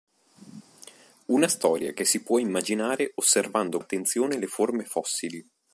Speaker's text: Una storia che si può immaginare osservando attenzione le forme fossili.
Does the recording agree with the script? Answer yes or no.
yes